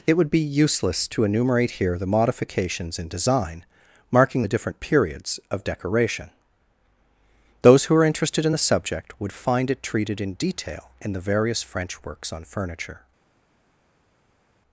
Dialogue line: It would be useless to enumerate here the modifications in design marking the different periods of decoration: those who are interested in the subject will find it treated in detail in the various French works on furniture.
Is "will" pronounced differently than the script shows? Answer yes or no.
yes